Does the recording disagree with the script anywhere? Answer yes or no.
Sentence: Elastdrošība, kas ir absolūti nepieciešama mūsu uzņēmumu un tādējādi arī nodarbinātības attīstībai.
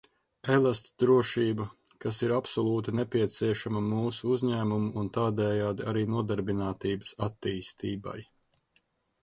no